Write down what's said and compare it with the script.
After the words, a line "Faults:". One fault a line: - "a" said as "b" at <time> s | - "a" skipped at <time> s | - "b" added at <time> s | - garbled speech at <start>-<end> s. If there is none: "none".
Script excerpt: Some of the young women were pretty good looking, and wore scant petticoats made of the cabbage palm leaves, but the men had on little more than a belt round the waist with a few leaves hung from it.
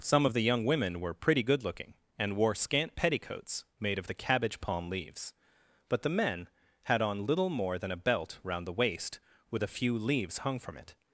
Some of the young women were pretty good looking, and wore scant petticoats made of the cabbage palm leaves, but the men had on little more than a belt round the waist with a few leaves hung from it.
Faults:
none